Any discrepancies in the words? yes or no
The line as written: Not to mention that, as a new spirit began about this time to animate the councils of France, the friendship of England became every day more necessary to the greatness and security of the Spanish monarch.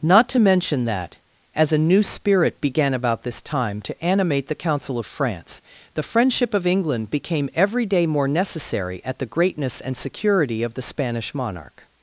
yes